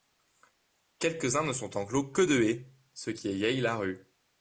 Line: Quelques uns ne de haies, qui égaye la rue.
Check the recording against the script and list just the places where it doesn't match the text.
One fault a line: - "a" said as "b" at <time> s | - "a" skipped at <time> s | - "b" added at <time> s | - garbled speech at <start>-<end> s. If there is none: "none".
- "sont enclos que" added at 1.5 s
- "ce" added at 2.9 s